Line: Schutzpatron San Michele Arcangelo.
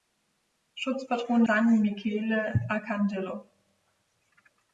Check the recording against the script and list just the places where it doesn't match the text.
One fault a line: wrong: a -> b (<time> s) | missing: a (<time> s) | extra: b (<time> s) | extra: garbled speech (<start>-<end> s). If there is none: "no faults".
no faults